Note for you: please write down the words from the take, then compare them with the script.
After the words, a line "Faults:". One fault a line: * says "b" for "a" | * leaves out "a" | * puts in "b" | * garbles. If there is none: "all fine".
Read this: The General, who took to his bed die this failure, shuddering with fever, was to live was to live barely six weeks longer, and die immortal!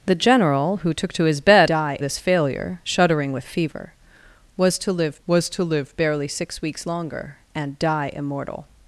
The General, who took to his bed die this failure, shuddering with fever, was to live was to live barely six weeks longer, and die immortal!
Faults:
all fine